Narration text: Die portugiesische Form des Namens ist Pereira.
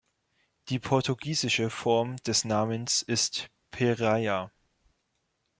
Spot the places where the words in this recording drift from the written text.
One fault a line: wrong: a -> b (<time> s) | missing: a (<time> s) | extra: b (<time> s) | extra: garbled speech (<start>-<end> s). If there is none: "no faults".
no faults